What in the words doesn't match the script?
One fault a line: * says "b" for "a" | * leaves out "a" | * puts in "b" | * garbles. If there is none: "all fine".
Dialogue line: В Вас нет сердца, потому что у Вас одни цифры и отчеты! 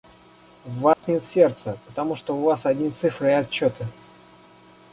all fine